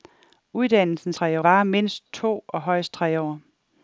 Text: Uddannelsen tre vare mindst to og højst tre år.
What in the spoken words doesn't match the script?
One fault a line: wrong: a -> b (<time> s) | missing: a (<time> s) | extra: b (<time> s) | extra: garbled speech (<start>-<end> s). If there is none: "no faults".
no faults